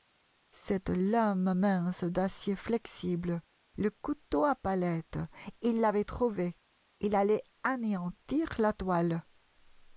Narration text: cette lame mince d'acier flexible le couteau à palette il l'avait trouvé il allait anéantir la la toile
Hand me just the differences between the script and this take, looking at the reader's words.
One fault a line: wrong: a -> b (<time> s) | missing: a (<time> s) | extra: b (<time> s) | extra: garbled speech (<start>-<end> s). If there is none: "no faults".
missing: la (8.7 s)